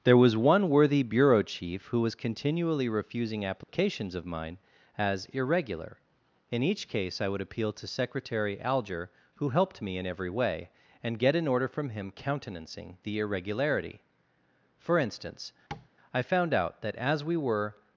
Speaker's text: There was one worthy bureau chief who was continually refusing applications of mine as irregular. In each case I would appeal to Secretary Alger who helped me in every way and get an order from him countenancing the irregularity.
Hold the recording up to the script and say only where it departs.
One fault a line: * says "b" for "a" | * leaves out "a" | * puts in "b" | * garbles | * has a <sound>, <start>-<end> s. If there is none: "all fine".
* has a dropout, 3.6-3.7 s
* puts in "For instance I found out that as we were"
* has a tap, 15.7-15.9 s